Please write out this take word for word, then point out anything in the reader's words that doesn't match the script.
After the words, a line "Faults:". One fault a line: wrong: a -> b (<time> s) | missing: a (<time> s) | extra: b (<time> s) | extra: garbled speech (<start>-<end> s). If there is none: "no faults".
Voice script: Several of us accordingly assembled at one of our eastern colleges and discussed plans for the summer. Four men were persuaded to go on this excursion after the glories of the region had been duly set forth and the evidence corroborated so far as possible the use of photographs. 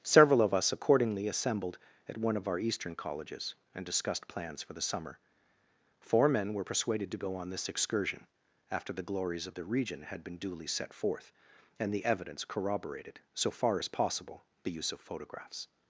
Several of us accordingly assembled at one of our eastern colleges and discussed plans for the summer. Four men were persuaded to go on this excursion after the glories of the region had been duly set forth and the evidence corroborated so far as possible the use of photographs.
Faults:
no faults